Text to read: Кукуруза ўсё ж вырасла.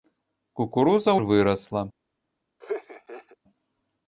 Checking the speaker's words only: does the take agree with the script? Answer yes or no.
no